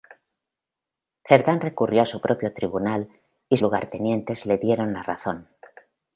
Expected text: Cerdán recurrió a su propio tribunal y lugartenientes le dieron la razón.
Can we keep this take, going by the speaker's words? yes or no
yes